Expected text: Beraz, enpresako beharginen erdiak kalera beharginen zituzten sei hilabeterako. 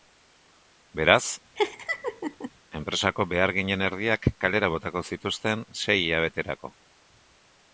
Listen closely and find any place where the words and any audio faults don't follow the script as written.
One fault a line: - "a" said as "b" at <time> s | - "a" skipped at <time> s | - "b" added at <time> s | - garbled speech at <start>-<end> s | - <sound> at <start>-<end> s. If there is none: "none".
- laugh at 1.6-2.5 s
- "beharginen" said as "botako" at 4.8 s